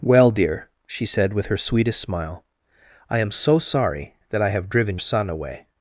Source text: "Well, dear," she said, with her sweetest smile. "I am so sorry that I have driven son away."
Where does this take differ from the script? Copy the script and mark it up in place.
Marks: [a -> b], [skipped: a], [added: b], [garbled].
"Well, dear," she said, with her sweetest smile. "I am so sorry that I have driven son away."